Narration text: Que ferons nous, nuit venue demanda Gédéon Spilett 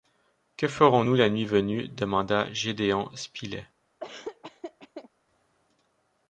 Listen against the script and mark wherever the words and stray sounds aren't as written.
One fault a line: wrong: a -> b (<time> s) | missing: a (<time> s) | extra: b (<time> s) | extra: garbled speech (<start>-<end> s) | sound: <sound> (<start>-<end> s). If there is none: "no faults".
extra: la (1.2 s)
sound: laugh (4.0-5.1 s)